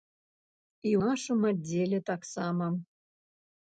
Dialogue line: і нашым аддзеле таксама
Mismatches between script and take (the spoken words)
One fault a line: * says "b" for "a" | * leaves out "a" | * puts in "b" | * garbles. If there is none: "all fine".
all fine